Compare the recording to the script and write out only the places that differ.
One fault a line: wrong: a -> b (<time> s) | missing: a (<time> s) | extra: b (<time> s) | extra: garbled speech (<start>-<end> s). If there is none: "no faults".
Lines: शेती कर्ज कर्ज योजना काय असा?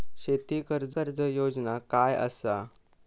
no faults